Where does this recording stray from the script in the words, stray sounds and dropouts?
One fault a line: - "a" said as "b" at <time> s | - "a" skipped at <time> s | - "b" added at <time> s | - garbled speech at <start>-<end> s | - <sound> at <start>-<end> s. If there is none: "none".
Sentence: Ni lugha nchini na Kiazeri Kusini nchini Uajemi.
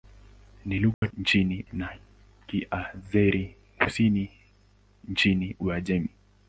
- dropout at 0.9-1.0 s